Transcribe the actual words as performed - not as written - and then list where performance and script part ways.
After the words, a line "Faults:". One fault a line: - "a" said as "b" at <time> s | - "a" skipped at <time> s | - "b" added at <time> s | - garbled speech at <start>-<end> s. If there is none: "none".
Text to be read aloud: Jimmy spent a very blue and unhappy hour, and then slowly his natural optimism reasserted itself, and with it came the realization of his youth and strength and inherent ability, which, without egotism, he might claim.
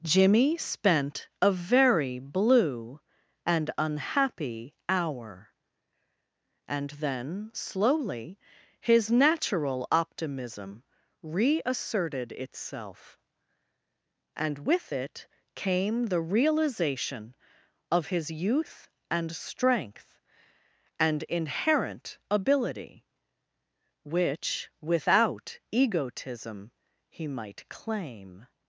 Jimmy spent a very blue and unhappy hour, and then slowly his natural optimism reasserted itself, and with it came the realization of his youth and strength and inherent ability, which, without egotism, he might claim.
Faults:
none